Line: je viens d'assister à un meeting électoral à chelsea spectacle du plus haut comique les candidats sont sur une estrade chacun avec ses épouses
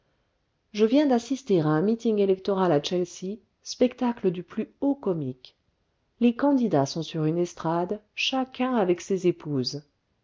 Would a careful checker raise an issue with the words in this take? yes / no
no